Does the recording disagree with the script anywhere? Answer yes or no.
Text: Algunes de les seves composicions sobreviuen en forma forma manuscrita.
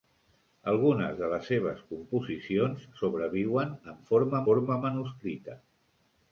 no